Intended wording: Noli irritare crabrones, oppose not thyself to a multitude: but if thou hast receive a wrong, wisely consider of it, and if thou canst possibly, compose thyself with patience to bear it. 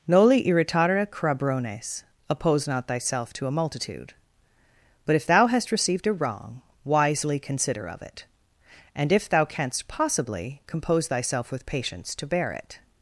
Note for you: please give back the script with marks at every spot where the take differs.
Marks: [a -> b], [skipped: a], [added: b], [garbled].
Noli irritare crabrones, oppose not thyself to a multitude: but if thou hast [receive -> received] a wrong, wisely consider of it, and if thou canst possibly, compose thyself with patience to bear it.